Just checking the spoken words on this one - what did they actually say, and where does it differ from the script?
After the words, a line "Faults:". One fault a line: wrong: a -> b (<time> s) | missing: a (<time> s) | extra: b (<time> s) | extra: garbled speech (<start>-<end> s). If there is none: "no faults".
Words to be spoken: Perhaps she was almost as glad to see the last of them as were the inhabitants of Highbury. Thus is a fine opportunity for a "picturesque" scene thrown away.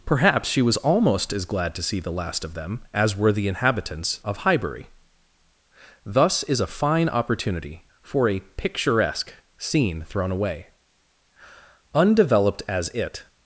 Perhaps she was almost as glad to see the last of them as were the inhabitants of Highbury. Thus is a fine opportunity for a "picturesque" scene thrown away. Undeveloped as it
Faults:
extra: Undeveloped as it (11.9 s)